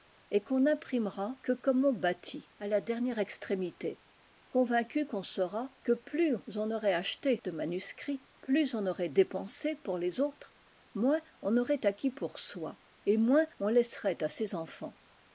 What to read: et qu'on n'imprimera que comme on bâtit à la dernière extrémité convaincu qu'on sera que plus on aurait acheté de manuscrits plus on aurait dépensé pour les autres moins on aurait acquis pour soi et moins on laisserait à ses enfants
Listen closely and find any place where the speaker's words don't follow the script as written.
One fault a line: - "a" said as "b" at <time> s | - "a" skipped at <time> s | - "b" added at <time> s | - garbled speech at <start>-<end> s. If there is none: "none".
none